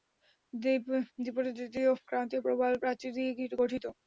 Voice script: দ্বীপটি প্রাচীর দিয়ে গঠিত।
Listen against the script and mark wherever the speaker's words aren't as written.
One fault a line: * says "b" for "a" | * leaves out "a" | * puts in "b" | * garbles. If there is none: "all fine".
* puts in "তৃতীয় ক্রান্তীয় প্রবাল"